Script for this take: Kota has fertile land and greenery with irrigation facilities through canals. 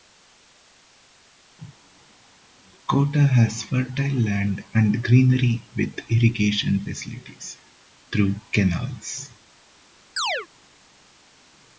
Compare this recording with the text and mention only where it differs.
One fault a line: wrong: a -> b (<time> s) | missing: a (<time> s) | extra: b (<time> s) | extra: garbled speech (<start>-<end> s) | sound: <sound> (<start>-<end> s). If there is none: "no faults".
sound: chirp (10.2-10.5 s)